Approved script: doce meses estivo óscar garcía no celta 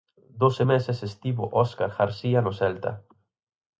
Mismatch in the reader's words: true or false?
false